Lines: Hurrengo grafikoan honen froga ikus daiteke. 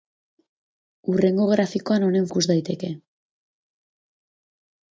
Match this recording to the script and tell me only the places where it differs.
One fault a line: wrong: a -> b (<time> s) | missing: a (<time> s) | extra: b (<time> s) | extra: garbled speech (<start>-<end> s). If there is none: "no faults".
missing: froga (2.2 s)